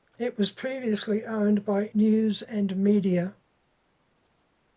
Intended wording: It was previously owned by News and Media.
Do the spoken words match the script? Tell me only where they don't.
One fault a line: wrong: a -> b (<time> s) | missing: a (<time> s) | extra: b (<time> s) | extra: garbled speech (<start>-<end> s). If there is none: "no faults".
no faults